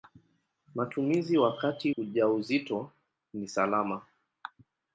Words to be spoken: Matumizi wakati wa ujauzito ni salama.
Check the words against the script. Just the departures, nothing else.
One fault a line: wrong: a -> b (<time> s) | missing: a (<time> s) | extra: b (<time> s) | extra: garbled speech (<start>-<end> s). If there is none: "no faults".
missing: wa (1.9 s)